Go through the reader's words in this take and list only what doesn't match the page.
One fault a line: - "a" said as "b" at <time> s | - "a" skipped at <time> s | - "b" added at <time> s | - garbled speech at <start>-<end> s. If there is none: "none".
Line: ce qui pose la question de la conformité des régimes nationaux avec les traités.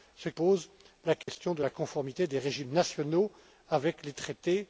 - "qui" skipped at 0.3 s